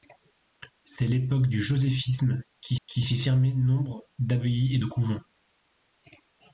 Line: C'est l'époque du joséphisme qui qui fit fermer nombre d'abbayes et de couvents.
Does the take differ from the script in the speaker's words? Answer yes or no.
no